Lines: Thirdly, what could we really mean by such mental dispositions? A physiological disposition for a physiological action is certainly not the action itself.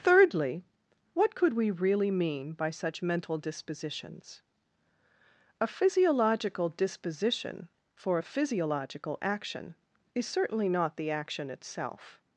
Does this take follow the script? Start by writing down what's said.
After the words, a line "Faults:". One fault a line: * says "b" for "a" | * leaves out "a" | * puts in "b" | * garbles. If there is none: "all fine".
Thirdly, what could we really mean by such mental dispositions? A physiological disposition for a physiological action is certainly not the action itself.
Faults:
all fine